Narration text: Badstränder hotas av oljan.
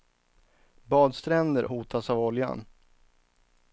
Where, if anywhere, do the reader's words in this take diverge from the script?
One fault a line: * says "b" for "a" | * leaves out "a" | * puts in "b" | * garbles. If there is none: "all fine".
all fine